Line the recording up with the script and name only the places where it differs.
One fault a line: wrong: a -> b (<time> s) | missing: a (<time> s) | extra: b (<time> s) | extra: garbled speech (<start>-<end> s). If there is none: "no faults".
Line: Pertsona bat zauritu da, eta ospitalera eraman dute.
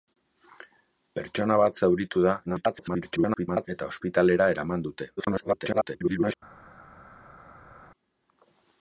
extra: garbled speech (2.5-3.7 s)
extra: garbled speech (5.2-6.3 s)